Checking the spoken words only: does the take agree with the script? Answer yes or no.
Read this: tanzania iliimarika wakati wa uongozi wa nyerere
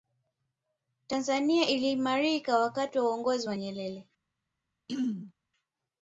yes